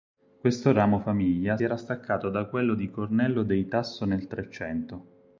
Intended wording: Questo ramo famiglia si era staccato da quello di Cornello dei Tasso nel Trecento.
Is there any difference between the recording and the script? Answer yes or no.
yes